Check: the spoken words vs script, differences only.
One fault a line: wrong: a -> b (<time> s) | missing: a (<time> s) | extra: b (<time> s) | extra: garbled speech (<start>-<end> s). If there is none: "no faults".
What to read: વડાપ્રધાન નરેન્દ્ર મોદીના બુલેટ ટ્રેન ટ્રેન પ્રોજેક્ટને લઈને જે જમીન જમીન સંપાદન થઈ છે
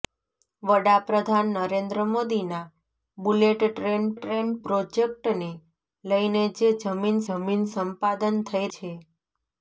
no faults